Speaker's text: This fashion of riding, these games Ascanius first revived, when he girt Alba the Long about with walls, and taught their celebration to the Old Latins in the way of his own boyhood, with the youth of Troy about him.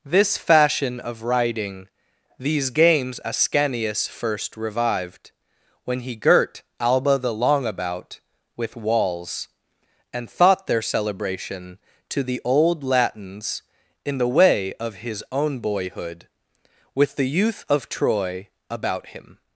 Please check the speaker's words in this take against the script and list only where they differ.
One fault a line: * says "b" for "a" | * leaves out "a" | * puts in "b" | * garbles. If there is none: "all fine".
* says "thought" for "taught"